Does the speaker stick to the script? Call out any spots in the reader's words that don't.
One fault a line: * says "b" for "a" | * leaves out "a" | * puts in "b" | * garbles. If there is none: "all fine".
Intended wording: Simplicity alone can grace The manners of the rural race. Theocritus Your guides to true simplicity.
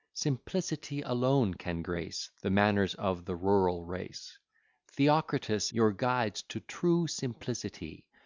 all fine